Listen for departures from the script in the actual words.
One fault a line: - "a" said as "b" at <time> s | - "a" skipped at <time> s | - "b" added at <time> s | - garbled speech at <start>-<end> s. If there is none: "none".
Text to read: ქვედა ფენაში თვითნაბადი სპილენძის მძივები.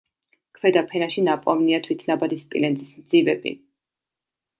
- "ნაპოვნია" added at 1.3 s